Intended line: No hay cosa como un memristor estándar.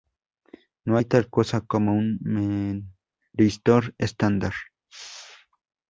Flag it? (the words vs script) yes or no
yes